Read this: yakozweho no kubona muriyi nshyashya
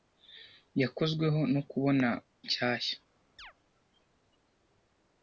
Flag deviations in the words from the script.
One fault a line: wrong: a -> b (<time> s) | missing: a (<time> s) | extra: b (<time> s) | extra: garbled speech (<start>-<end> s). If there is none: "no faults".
missing: muriyi (2.1 s)